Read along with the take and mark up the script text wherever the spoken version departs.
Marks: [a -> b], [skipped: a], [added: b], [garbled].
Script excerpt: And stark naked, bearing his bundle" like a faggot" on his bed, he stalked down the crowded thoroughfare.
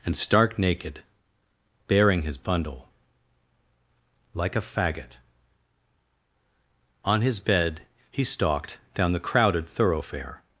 And stark naked, bearing his bundle" like a faggot" on his bed, he stalked down the crowded thoroughfare.